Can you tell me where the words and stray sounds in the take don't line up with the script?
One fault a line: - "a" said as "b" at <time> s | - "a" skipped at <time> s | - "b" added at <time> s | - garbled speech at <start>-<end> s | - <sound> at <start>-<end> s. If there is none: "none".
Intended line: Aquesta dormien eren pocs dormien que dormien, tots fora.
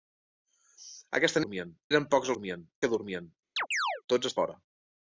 - chirp at 3.6-4.0 s